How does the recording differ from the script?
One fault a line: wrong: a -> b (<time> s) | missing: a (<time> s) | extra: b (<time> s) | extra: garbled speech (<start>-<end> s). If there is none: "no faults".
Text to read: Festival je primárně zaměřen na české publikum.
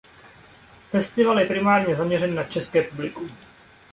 no faults